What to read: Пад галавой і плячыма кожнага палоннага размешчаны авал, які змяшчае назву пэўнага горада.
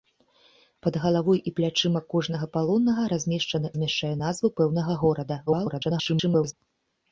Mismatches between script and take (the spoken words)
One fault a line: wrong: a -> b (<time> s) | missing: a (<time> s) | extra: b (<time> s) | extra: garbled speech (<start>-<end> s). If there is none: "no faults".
missing: авал які (3.7 s)
extra: garbled speech (5.5-6.5 s)